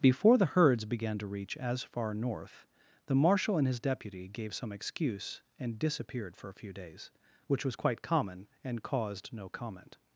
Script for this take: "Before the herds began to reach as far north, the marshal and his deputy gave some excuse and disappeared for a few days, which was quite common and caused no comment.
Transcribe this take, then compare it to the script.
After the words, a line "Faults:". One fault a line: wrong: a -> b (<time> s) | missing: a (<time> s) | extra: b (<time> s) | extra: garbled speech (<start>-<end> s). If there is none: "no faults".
"Before the herds began to reach as far north, the marshal and his deputy gave some excuse and disappeared for a few days, which was quite common and caused no comment.
Faults:
no faults